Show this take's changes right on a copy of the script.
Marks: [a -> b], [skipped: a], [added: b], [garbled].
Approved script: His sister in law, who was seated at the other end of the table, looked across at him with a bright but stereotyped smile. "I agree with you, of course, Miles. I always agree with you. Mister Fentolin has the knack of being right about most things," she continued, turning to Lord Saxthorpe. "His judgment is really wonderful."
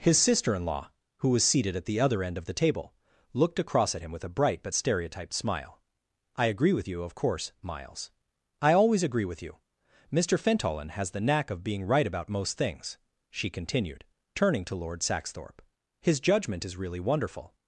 His sister in law, who was seated at the other end of the table, looked across at him with a bright but stereotyped smile. "I agree with you, of course, Miles. I always agree with you. Mister Fentolin has the knack of being right about most things," she continued, turning to Lord Saxthorpe. "His judgment is really wonderful."